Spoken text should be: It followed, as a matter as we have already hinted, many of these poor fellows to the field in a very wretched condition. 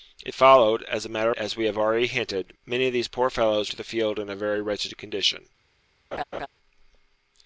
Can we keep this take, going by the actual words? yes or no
yes